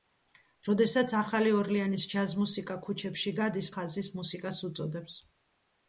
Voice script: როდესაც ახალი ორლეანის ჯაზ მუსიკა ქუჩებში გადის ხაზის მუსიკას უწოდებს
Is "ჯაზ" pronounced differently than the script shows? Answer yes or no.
no